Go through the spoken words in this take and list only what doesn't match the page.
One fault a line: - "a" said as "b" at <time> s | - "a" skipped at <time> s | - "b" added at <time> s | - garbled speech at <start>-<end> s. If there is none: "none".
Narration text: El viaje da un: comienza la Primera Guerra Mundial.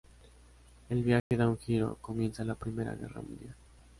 - "giro" added at 1.6 s